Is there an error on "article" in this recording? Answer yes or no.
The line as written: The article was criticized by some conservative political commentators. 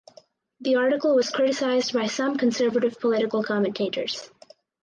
no